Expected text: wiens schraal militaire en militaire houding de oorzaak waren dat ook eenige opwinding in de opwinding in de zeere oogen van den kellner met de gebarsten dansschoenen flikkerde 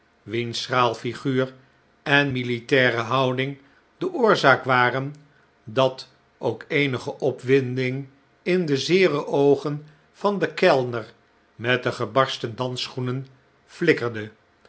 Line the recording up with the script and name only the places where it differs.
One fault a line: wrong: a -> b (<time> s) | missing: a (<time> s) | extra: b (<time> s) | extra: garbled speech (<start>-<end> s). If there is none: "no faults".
wrong: militaire -> figuur (0.9 s)
missing: opwinding in de (8.8 s)